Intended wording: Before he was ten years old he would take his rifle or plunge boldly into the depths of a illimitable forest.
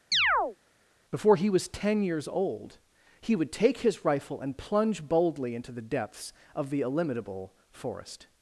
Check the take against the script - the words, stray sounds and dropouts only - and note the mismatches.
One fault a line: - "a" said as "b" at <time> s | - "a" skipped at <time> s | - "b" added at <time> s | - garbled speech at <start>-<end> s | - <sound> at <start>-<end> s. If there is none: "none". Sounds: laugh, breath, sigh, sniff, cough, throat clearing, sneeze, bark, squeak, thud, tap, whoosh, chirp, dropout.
- chirp at 0.1-0.6 s
- "or" said as "and" at 4.4 s
- "a" said as "the" at 6.7 s